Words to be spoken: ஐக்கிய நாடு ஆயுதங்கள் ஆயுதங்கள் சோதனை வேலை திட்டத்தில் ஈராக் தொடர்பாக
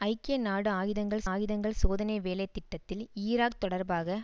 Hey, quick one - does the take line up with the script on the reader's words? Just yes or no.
yes